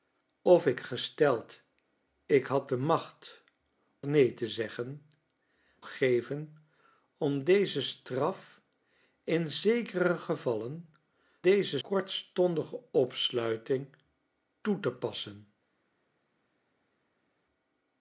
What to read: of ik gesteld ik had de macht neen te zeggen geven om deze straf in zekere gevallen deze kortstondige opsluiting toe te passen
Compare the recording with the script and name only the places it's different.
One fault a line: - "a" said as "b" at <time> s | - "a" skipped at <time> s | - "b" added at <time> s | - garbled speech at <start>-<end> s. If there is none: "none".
none